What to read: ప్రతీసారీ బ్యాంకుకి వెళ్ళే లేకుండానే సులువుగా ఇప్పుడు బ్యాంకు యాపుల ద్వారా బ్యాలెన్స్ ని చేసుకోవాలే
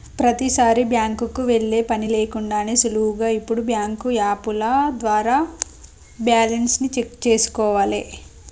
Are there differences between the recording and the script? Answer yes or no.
yes